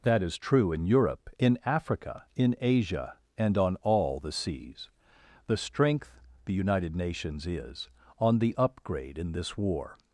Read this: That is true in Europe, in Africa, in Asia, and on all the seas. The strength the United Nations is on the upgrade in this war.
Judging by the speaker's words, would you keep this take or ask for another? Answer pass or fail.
pass